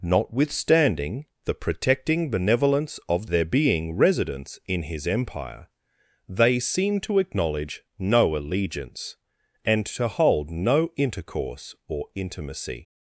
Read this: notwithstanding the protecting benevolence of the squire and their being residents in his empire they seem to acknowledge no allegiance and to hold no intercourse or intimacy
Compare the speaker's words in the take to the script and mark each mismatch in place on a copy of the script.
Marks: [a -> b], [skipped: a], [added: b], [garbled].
notwithstanding the protecting benevolence of [skipped: the squire and] their being residents in his empire they seem to acknowledge no allegiance and to hold no intercourse or intimacy